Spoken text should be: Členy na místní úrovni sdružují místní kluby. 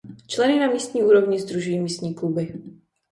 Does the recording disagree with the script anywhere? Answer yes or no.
no